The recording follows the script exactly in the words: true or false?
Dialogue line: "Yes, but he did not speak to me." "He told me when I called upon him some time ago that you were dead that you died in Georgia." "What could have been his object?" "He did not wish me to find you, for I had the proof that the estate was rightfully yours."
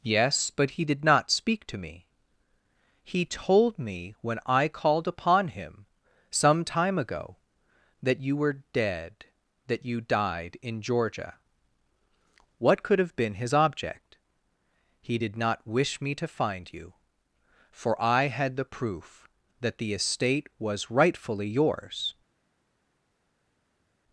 true